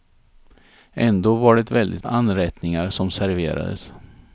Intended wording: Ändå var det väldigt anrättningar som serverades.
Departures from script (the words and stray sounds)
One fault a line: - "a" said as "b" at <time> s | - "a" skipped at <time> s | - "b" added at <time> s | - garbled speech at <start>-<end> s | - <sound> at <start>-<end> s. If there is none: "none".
none